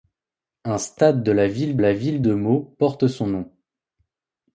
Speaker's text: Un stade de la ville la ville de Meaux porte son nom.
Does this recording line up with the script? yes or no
yes